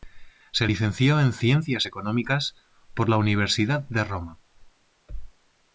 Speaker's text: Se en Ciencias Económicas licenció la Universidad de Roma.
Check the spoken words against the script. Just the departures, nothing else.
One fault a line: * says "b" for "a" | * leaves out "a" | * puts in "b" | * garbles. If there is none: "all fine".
* puts in "licenció"
* says "por" for "licenció"